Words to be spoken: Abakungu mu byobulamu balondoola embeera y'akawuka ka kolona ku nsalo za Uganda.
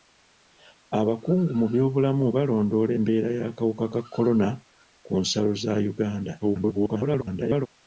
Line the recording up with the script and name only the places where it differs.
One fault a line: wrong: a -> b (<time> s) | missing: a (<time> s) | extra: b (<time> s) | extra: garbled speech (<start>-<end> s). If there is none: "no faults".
extra: garbled speech (6.4-7.7 s)